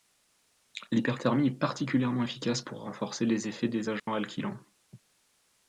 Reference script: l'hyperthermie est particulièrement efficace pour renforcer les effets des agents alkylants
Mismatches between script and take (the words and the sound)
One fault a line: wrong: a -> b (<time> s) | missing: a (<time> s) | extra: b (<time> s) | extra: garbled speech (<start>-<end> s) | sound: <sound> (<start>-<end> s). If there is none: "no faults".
sound: dropout (4.0-4.1 s)